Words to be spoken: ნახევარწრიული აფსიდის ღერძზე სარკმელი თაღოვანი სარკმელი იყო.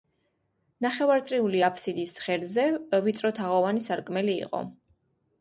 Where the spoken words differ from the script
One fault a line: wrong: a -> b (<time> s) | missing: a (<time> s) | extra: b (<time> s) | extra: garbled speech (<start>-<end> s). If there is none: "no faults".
wrong: სარკმელი -> ვიწრო (3.1 s)